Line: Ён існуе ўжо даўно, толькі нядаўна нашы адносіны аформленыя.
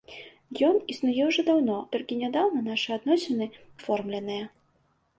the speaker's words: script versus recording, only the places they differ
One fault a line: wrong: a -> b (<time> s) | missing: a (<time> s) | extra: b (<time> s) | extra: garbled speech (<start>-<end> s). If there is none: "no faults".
no faults